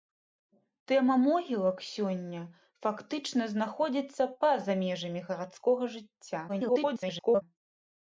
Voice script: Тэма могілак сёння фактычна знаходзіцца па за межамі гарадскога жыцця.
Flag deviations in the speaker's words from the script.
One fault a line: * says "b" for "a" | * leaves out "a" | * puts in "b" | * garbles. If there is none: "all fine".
* garbles